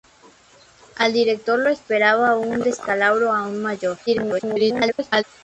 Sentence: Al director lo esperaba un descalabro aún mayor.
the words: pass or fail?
fail